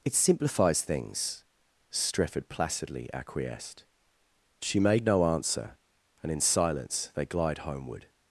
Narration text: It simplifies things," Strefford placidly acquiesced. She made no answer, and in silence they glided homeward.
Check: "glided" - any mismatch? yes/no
yes